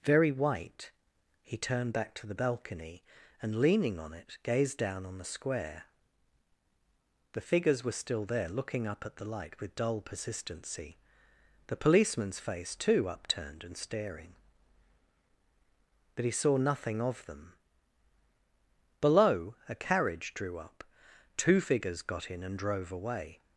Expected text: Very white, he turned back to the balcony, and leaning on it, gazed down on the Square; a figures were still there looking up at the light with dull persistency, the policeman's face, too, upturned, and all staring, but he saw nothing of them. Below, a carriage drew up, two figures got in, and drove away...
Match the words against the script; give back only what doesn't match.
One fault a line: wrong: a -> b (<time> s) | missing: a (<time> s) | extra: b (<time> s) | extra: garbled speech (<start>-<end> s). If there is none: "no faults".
wrong: a -> the (7.3 s)
missing: all (13.8 s)